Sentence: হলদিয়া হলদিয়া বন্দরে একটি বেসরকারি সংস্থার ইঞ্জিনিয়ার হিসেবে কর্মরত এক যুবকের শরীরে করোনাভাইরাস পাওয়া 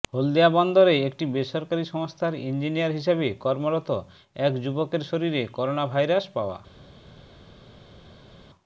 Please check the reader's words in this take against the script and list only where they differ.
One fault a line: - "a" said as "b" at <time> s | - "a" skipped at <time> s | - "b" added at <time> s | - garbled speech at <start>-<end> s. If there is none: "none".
- "হলদিয়া" skipped at 0.5 s